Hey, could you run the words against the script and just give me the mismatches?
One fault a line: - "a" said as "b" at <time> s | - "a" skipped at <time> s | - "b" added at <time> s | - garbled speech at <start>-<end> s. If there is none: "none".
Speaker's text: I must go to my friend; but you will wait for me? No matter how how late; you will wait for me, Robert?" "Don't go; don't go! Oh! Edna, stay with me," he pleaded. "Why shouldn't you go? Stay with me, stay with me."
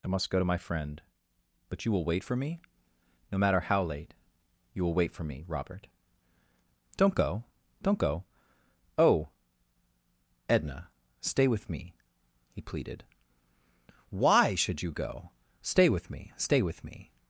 - "how" skipped at 3.8 s
- "shouldn't" said as "should" at 14.5 s